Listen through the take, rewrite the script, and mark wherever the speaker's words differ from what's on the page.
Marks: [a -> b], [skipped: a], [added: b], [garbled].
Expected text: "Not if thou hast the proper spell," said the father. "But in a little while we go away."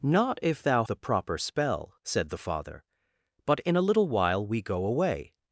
"Not if thou [skipped: hast] the proper spell," said the father. "But in a little while we go away."